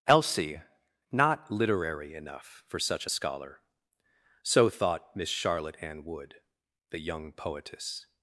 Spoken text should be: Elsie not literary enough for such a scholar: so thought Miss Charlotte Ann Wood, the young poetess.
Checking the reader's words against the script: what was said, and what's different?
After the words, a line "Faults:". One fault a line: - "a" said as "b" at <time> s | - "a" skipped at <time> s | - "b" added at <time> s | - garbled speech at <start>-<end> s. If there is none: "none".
Elsie not literary enough for such a scholar: so thought Miss Charlotte Ann Wood, the young poetess.
Faults:
none